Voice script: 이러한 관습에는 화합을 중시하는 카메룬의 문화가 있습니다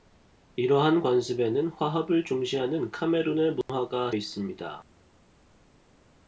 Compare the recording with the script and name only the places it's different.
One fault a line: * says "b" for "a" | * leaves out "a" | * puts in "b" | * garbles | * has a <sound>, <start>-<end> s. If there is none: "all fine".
* has a dropout, 3.6-3.7 s